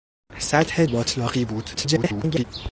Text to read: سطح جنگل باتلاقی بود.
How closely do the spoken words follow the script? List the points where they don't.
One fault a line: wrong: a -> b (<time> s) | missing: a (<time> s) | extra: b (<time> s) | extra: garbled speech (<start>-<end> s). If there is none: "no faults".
missing: جنگل (0.8 s)
extra: garbled speech (1.7-2.4 s)